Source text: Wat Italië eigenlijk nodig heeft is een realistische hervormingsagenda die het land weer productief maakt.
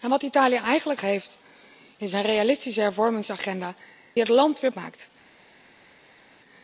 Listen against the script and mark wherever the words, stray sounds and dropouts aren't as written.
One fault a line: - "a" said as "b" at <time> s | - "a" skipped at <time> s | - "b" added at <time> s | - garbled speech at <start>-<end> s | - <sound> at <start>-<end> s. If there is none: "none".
- "nodig" skipped at 1.0 s
- "die" skipped at 3.7 s
- "productief" skipped at 4.7 s